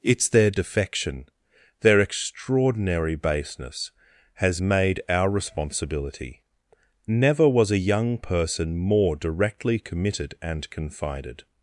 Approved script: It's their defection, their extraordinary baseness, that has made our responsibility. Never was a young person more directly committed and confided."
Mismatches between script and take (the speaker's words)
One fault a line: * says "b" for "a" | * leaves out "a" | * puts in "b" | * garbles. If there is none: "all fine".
* leaves out "that"